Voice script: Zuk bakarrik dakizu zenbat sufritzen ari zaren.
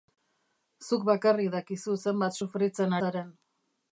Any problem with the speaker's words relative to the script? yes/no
yes